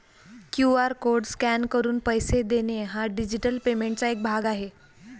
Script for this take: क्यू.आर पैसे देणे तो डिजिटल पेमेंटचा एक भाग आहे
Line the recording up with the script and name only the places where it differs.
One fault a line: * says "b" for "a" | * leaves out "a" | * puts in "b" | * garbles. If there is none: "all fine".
* puts in "कोड स्कॅन करून"
* says "हा" for "तो"